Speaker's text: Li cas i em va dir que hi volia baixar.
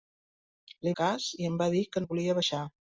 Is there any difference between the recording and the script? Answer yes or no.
no